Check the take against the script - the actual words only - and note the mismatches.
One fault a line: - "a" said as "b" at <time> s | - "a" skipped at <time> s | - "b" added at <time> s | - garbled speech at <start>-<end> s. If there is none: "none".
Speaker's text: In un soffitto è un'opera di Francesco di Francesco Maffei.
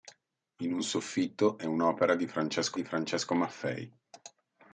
none